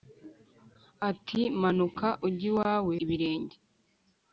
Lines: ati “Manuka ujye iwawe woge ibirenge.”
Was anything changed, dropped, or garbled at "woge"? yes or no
yes